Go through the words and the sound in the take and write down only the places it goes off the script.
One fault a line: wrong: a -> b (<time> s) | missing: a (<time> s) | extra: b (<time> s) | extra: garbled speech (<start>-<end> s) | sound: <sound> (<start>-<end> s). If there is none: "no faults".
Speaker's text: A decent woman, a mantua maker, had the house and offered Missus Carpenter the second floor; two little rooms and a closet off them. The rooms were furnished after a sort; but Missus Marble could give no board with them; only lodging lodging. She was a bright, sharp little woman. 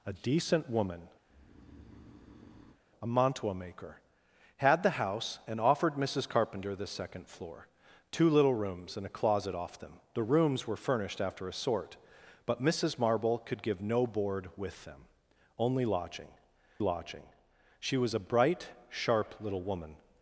sound: breath (1.3-2.8 s)